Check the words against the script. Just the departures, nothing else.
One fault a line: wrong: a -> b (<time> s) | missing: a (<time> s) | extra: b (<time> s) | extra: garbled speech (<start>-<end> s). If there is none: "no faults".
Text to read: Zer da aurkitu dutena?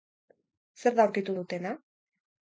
no faults